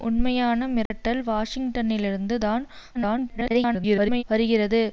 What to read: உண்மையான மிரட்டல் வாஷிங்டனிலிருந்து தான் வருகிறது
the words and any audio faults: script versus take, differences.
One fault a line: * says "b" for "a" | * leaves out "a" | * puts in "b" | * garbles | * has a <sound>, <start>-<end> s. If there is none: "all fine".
* has a dropout, 0.9-0.9 s
* garbles